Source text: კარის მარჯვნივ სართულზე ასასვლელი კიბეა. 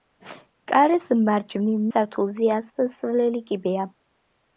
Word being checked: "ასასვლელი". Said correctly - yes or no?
yes